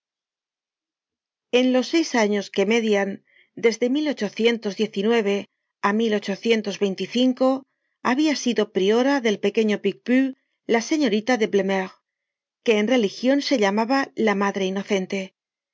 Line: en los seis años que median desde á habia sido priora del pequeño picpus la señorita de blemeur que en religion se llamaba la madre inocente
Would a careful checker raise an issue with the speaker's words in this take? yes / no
no